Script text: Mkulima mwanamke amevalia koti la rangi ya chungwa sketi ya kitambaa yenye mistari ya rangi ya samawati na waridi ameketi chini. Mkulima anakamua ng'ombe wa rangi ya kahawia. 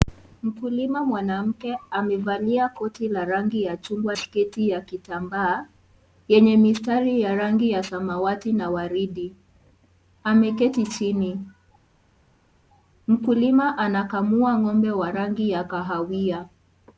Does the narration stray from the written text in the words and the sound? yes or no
no